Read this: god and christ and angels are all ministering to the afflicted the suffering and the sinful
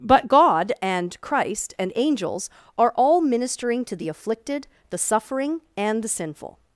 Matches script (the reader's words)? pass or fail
fail